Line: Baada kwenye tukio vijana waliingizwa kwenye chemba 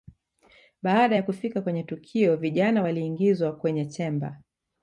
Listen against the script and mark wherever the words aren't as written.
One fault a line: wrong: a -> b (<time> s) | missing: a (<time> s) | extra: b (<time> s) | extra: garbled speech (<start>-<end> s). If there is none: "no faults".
extra: ya kufika (1.1 s)